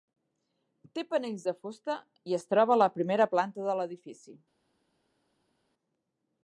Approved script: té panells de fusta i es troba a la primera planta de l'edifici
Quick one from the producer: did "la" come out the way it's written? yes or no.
yes